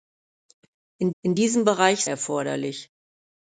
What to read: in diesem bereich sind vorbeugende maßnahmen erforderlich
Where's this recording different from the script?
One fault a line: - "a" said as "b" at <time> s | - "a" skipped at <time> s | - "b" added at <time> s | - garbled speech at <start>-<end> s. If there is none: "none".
- "in" added at 1.2 s
- "sind vorbeugende maßnahmen" skipped at 2.1 s